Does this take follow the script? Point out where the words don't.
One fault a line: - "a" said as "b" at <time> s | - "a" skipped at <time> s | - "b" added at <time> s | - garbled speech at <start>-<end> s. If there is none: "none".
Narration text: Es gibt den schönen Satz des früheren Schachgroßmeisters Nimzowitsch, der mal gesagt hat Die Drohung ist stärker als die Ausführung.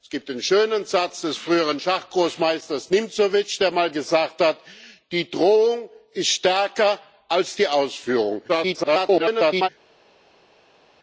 - garbled speech at 8.5-9.7 s